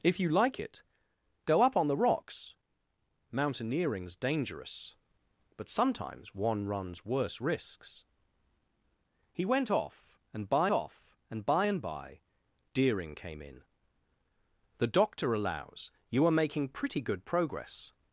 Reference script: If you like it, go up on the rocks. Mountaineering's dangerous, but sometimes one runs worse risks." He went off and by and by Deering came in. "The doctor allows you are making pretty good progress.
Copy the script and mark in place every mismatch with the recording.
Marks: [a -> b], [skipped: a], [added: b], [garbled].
If you like it, go up on the rocks. Mountaineering's dangerous, but sometimes one runs worse risks." He went off and by [added: off and by] and by Deering came in. "The doctor allows you are making pretty good progress.